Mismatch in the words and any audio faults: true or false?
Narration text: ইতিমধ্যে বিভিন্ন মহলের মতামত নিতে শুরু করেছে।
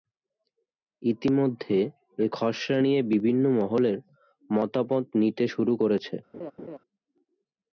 true